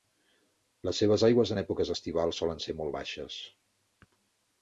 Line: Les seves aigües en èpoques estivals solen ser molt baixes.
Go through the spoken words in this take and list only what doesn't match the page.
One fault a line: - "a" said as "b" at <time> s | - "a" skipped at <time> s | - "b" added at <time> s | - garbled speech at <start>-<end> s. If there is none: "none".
none